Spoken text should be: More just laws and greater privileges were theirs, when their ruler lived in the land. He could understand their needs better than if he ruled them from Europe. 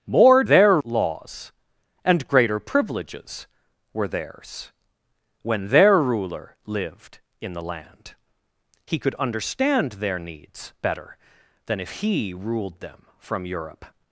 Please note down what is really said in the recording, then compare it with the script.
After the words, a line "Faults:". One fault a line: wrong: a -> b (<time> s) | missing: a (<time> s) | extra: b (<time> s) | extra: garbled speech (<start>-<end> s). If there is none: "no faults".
More their laws and greater privileges were theirs, when their ruler lived in the land. He could understand their needs better than if he ruled them from Europe.
Faults:
wrong: just -> their (0.4 s)